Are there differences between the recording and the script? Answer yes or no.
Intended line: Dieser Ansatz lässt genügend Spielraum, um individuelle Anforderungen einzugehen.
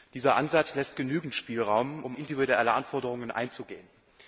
no